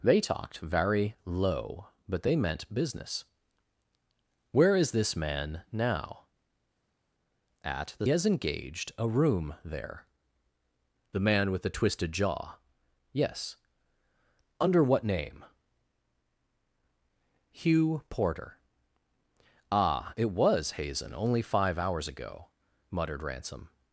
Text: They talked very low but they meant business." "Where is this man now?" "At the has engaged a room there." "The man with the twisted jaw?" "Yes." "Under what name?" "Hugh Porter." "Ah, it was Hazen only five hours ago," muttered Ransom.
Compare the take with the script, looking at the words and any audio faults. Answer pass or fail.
pass